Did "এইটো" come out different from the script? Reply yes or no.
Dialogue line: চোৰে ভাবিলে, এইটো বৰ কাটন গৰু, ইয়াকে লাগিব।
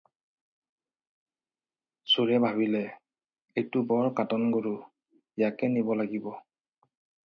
no